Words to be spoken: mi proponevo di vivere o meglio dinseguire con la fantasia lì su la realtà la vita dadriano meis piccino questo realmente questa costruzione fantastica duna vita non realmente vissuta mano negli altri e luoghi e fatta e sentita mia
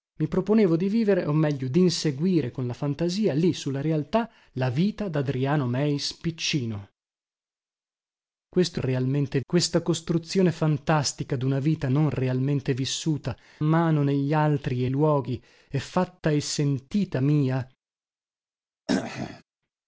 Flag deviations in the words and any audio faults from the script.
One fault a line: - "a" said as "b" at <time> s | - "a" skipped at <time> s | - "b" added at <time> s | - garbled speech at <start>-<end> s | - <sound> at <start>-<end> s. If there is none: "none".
- throat clearing at 18.9-19.4 s